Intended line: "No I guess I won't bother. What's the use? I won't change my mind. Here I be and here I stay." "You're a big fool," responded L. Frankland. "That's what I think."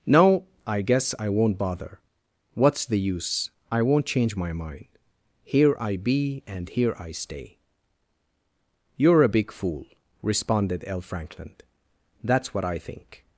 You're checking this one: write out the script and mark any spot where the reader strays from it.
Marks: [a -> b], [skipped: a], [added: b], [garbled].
"No I guess I won't bother. What's the use? I won't change my mind. Here I be and here I stay." "You're a big fool," responded L. Frankland. "That's what I think."